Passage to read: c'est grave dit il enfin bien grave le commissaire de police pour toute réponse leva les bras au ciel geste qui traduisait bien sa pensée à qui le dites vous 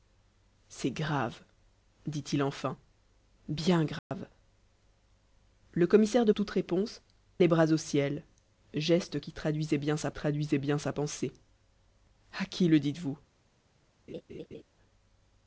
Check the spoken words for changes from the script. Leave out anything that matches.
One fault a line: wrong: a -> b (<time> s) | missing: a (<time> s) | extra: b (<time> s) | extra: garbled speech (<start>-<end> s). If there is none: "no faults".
missing: police pour (6.3 s)
missing: leva (7.0 s)
extra: traduisait bien sa (10.1 s)